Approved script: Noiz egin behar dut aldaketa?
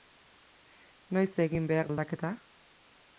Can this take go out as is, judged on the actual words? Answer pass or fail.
fail